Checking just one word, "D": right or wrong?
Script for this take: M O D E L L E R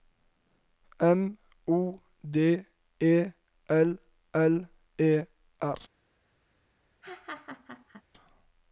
right